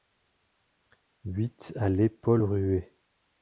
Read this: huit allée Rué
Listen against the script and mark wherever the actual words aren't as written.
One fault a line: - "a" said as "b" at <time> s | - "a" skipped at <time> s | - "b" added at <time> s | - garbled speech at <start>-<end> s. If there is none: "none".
- "Paul" added at 2.1 s